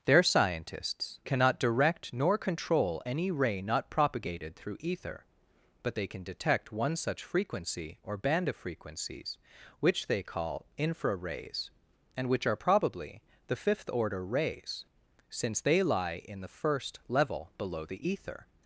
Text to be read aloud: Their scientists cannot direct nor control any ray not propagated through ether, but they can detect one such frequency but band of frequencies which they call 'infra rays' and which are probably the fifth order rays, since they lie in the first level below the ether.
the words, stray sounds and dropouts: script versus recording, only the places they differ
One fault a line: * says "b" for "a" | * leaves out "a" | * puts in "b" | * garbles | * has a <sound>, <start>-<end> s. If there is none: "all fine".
* says "or" for "but"